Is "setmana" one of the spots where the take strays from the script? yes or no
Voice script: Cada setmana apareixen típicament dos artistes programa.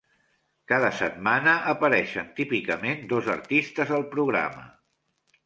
no